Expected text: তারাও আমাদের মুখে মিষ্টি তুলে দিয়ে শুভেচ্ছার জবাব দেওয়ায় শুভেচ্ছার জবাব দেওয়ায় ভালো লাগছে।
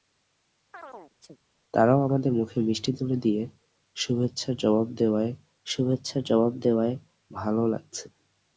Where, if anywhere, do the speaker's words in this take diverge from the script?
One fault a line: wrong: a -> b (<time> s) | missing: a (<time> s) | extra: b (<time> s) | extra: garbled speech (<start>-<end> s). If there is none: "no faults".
no faults